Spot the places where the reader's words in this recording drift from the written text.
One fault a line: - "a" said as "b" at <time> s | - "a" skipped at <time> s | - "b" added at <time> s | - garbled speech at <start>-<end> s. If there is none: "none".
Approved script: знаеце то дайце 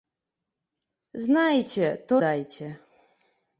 none